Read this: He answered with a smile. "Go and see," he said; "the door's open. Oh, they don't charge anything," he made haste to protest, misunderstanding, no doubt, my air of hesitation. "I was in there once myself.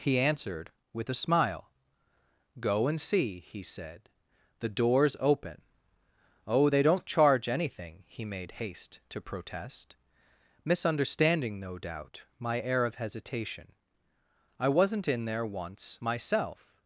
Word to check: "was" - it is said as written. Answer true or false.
false